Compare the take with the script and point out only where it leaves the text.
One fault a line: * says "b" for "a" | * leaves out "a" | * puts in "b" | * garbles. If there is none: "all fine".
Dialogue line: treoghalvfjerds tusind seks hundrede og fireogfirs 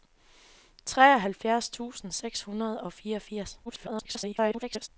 * garbles